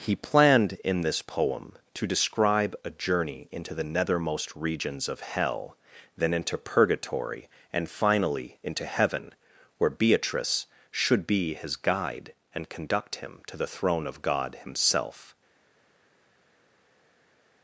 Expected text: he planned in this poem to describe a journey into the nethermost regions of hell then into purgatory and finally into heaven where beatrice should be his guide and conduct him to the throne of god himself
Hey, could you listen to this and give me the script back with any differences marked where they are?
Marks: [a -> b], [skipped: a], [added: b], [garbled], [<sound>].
he planned in this poem to describe a journey into the nethermost regions of hell then into purgatory and finally into heaven where beatrice should be his guide and conduct him to the throne of god himself